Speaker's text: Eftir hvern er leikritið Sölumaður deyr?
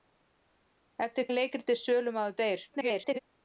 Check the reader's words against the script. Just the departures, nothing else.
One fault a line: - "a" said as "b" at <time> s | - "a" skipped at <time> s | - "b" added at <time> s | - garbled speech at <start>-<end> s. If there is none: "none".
- "hvern" skipped at 1.3 s
- garbled speech at 2.7-3.2 s